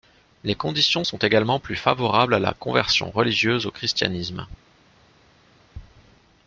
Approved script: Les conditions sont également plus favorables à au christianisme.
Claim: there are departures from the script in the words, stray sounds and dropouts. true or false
true